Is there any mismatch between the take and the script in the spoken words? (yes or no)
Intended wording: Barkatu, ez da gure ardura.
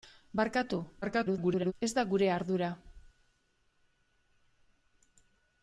yes